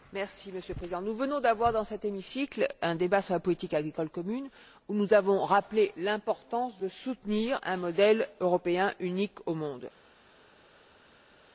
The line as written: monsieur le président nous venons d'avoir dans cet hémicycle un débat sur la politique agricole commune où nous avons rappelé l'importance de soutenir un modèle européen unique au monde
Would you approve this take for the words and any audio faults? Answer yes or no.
yes